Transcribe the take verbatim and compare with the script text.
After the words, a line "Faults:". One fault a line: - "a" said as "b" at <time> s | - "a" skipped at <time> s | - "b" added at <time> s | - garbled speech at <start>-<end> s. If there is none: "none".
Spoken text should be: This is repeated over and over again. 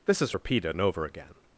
This is repeated and over again.
Faults:
- "over" skipped at 0.8 s